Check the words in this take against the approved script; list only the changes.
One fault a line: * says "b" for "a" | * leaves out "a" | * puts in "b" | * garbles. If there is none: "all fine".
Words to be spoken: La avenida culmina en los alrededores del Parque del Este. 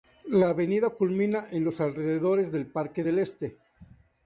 all fine